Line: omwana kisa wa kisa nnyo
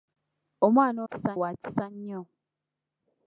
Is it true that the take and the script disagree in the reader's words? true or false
false